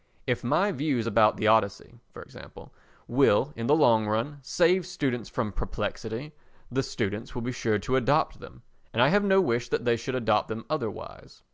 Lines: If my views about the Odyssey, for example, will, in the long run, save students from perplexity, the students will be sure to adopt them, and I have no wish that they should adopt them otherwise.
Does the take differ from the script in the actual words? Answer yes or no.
no